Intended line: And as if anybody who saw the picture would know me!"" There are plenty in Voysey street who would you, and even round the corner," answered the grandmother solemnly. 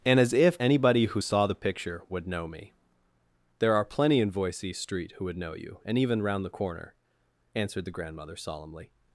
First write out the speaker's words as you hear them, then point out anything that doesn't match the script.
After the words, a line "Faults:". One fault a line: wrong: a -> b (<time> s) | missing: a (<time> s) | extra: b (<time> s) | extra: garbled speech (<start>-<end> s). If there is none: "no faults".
And as if anybody who saw the picture would know me!"" There are plenty in Voysey street who would know you, and even round the corner," answered the grandmother solemnly.
Faults:
extra: know (5.4 s)